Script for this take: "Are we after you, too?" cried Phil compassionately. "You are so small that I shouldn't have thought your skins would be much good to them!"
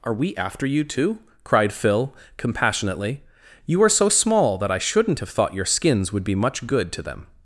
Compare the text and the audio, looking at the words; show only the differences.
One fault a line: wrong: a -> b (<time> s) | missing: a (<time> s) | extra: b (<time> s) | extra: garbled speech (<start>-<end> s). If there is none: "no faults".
no faults